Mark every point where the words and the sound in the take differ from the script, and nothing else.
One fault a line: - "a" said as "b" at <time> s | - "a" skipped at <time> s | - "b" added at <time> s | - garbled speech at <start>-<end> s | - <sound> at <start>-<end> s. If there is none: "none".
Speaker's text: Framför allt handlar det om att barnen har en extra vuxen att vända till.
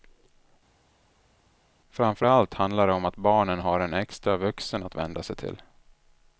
- "sig" added at 5.2 s